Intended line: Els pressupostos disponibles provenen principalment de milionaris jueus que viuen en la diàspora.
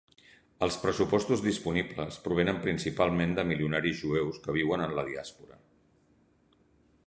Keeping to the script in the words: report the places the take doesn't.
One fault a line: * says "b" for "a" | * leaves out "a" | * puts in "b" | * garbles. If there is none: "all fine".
all fine